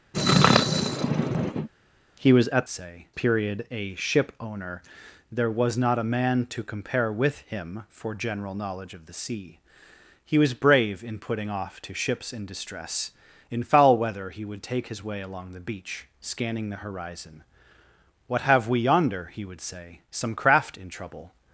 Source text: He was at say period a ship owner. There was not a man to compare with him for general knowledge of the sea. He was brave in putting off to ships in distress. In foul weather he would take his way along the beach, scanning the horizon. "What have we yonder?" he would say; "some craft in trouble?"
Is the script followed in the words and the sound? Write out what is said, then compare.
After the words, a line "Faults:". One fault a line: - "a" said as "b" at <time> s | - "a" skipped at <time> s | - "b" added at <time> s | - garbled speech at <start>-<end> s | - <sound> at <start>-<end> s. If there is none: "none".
He was at say period a ship owner. There was not a man to compare with him for general knowledge of the sea. He was brave in putting off to ships in distress. In foul weather he would take his way along the beach, scanning the horizon. "What have we yonder?" he would say; "some craft in trouble?"
Faults:
- sneeze at 0.1-1.7 s